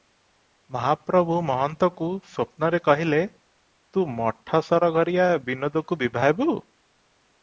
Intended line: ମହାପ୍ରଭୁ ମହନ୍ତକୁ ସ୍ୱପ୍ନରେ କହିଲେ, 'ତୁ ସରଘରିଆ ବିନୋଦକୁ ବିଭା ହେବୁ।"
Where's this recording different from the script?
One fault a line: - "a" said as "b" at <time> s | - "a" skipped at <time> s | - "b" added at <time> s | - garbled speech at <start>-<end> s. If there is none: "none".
- "ମଠ" added at 4.1 s